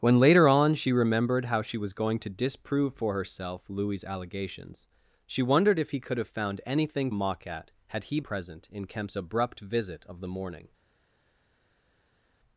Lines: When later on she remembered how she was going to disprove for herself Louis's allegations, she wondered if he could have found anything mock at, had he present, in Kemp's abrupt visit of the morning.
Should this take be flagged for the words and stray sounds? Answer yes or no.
no